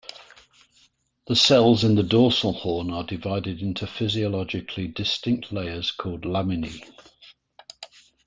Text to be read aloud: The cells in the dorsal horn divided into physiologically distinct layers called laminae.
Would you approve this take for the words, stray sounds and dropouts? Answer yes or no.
no